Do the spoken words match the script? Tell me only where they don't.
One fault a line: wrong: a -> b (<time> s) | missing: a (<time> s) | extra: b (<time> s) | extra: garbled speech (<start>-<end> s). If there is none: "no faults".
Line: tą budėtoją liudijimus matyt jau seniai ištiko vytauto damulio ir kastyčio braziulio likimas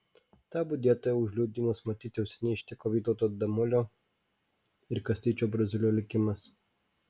extra: už (1.2 s)